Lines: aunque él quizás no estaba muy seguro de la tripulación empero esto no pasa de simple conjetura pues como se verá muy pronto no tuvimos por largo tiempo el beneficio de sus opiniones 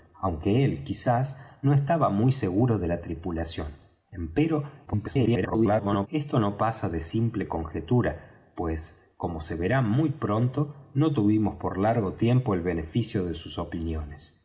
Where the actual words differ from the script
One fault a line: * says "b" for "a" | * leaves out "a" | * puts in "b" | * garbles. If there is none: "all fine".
* garbles